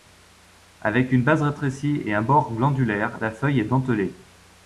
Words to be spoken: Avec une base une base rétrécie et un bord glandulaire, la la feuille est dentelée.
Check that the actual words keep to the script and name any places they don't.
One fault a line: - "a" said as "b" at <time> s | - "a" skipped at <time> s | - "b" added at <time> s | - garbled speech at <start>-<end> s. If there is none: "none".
- "une base" skipped at 1.4 s
- "la" skipped at 3.3 s